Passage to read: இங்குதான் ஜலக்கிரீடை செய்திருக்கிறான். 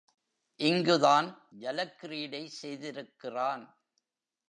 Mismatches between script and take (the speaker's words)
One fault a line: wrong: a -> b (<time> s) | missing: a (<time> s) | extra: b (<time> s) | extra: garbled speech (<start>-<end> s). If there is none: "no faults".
no faults